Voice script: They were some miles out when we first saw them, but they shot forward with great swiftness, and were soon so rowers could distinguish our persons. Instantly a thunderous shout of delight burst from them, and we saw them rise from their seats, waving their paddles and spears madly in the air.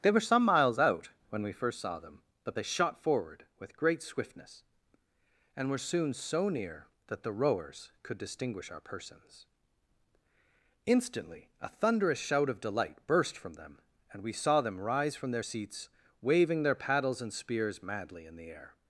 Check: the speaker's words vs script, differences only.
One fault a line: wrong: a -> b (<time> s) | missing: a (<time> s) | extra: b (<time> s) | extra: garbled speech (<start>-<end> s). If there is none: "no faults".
extra: near that the (6.5 s)